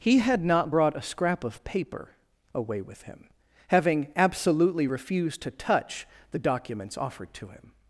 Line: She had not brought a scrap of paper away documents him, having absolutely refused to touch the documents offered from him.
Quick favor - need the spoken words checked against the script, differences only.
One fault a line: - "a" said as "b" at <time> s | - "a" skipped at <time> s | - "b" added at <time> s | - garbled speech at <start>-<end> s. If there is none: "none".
- "She" said as "He" at 0.0 s
- "documents" said as "with" at 2.8 s
- "from" said as "to" at 7.3 s